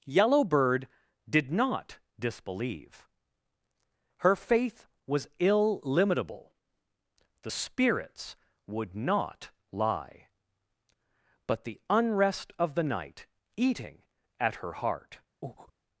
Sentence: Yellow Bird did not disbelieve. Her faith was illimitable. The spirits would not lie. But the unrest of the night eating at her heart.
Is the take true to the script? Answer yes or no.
yes